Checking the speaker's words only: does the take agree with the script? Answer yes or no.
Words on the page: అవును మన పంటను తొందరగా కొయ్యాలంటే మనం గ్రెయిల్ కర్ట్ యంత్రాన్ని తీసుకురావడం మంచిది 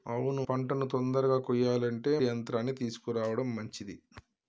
no